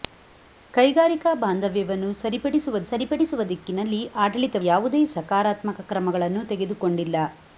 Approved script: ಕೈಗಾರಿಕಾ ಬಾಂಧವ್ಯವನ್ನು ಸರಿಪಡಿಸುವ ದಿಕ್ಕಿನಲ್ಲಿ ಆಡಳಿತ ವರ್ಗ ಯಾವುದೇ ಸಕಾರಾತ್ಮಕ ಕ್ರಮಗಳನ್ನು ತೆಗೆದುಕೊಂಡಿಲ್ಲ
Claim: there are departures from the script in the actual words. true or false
true